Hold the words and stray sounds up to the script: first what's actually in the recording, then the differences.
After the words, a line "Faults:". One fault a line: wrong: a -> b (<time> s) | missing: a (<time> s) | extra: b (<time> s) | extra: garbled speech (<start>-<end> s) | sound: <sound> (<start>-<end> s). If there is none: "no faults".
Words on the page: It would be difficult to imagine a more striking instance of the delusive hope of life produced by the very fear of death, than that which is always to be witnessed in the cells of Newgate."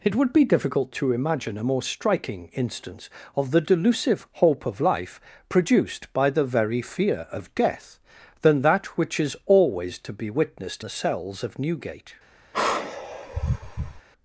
It would be difficult to imagine a more striking instance of the delusive hope of life produced by the very fear of death, than that which is always to be witnessed the cells of Newgate."
Faults:
missing: in (10.8 s)
sound: sigh (12.5-14.0 s)